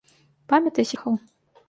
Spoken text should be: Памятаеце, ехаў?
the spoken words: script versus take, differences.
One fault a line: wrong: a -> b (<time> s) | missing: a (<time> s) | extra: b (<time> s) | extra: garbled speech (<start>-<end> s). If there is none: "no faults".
no faults